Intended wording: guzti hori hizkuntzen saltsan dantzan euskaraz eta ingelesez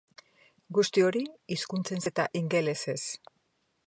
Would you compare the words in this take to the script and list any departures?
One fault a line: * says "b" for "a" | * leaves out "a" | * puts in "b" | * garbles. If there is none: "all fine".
* leaves out "saltsan dantzan euskaraz"